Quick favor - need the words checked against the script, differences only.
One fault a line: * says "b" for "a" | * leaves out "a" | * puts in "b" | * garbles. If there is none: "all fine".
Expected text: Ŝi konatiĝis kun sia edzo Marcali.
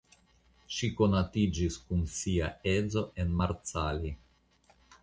* puts in "en"